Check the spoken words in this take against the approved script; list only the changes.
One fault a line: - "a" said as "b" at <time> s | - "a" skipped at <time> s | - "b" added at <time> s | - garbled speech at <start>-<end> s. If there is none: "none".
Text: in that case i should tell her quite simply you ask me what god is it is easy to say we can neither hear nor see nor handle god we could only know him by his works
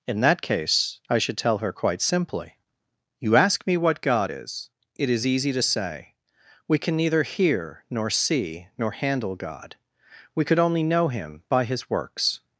none